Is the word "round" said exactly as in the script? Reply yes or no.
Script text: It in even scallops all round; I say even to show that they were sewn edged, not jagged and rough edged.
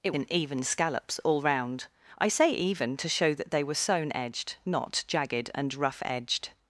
yes